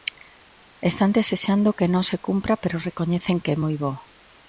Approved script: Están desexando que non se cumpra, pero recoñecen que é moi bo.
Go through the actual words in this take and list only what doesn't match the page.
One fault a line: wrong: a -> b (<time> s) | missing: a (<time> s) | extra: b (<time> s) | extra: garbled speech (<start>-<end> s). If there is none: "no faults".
no faults